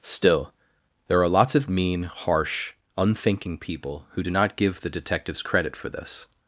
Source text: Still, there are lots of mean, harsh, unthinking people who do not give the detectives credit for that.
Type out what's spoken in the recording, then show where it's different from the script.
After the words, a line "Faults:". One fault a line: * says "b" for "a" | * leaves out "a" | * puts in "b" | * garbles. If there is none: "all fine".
Still, there are lots of mean, harsh, unthinking people who do not give the detectives credit for this.
Faults:
* says "this" for "that"